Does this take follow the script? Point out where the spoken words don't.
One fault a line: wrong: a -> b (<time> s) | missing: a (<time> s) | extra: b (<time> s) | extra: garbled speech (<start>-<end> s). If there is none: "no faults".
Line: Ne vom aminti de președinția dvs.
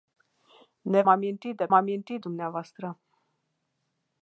missing: vom (1.0 s)
wrong: președinția -> aminti (1.7 s)